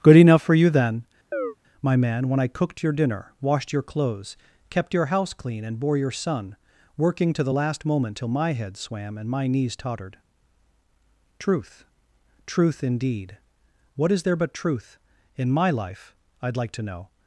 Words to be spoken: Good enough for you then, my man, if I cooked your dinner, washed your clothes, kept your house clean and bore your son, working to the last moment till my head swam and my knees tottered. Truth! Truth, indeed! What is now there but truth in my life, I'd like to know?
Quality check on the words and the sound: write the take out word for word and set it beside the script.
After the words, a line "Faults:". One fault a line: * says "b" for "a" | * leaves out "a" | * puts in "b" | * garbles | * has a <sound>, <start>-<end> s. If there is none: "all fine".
Good enough for you then, my man, when I cooked your dinner, washed your clothes, kept your house clean and bore your son, working to the last moment till my head swam and my knees tottered. Truth! Truth, indeed! What is there but truth in my life, I'd like to know?
Faults:
* has a chirp, 1.3-1.6 s
* says "when" for "if"
* leaves out "now"